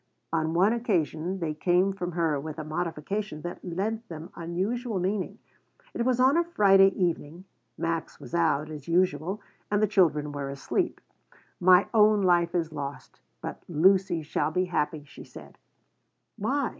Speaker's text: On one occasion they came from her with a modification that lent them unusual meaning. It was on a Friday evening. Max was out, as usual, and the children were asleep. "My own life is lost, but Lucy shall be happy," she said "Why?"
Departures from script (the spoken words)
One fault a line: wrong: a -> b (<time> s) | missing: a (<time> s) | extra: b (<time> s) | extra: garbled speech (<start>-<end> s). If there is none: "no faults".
no faults